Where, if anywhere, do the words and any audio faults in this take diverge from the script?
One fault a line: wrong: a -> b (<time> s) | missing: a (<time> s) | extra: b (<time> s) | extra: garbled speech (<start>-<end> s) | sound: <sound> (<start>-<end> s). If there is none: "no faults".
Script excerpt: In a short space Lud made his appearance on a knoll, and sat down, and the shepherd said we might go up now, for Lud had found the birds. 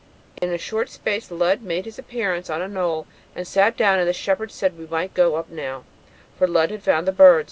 sound: dropout (0.4-0.4 s)